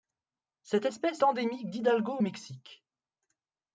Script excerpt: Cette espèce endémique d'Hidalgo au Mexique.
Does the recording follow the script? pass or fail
pass